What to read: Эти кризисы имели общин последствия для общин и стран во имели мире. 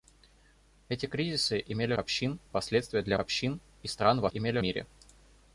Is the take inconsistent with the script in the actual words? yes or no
no